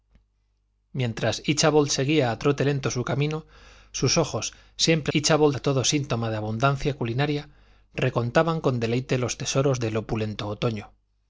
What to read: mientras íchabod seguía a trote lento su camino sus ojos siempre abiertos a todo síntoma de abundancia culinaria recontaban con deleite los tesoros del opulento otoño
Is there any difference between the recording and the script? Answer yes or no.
yes